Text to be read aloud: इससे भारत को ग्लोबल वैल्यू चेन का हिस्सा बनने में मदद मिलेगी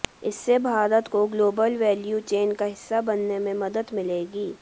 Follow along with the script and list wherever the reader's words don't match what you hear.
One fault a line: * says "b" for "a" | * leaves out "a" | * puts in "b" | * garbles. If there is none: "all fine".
all fine